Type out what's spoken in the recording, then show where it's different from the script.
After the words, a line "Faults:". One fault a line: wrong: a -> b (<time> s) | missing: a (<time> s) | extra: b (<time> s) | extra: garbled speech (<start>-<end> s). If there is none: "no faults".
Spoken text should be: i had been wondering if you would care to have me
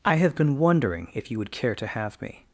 i have been wondering if you would care to have me
Faults:
wrong: had -> have (0.1 s)